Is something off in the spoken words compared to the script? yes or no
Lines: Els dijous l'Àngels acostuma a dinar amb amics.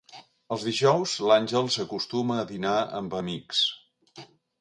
no